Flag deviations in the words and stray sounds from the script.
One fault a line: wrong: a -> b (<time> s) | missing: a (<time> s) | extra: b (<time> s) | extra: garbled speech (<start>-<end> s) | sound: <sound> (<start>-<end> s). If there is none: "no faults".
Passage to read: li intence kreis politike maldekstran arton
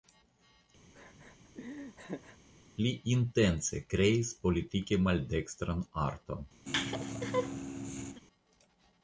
sound: laugh (0.9-2.4 s)
sound: laugh (6.7-8.2 s)